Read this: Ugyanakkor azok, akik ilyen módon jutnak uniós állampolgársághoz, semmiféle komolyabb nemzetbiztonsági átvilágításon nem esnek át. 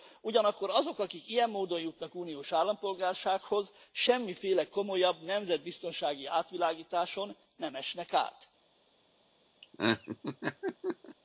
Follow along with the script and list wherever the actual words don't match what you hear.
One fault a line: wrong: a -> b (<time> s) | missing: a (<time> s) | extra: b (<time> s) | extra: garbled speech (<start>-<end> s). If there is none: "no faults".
no faults